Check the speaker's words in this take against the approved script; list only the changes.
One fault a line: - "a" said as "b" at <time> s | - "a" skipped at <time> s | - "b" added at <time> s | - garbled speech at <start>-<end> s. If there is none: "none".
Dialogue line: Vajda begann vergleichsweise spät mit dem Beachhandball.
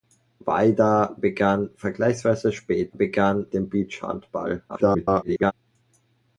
- "mit" said as "begann" at 3.0 s
- garbled speech at 4.7-5.5 s